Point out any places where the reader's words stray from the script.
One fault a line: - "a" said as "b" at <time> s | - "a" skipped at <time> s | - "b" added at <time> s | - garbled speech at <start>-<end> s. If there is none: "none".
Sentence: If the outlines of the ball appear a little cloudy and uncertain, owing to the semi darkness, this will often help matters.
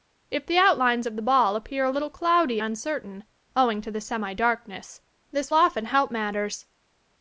- "and" skipped at 2.6 s
- "will" skipped at 5.5 s